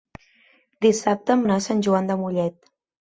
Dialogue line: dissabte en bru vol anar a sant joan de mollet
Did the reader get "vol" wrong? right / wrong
wrong